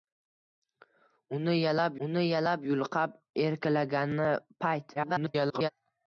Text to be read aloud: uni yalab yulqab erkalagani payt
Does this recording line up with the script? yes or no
no